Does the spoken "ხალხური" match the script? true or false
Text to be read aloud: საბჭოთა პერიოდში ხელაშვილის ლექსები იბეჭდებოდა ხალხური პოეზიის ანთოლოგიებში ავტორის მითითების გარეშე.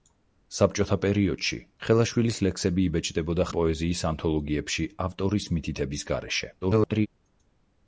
false